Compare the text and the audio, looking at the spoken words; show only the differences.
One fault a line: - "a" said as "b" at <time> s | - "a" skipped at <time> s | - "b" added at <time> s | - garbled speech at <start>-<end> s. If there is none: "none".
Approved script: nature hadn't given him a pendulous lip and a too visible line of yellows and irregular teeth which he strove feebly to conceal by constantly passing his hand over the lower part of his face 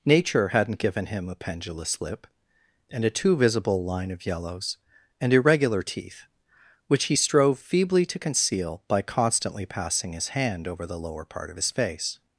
none